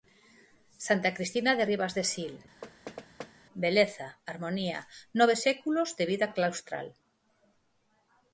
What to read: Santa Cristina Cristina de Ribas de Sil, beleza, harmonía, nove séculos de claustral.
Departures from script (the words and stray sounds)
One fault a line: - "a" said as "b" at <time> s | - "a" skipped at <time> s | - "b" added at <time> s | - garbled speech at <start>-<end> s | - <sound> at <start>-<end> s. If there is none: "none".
- "Cristina" skipped at 1.5 s
- thud at 2.6-3.3 s
- "vida" added at 6.1 s